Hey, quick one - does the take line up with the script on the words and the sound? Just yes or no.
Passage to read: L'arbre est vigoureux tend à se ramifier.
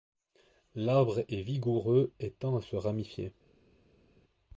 no